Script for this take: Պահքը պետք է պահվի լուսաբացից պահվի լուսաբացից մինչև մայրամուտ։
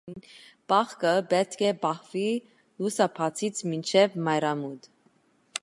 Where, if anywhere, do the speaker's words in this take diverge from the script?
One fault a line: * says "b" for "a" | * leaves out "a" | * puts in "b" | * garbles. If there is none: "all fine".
* leaves out "պահվի լուսաբացից"